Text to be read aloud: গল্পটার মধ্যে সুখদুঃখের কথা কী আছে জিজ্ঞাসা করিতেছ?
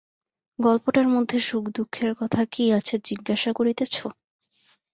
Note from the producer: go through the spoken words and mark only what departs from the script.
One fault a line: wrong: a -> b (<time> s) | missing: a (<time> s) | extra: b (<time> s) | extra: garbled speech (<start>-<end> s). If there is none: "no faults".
no faults